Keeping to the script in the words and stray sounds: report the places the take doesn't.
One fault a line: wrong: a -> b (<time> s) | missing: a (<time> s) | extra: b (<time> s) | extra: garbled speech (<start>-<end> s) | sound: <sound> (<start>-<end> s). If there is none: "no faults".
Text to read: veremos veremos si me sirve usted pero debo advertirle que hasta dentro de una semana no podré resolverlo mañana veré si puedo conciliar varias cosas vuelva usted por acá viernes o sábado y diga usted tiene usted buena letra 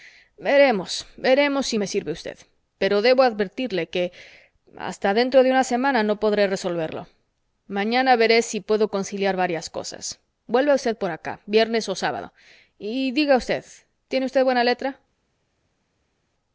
no faults